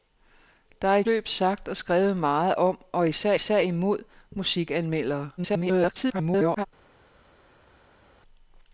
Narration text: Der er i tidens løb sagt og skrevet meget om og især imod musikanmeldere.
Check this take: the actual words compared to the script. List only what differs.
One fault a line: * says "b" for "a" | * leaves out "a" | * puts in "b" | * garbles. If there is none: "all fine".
* leaves out "tidens"
* puts in "især"
* garbles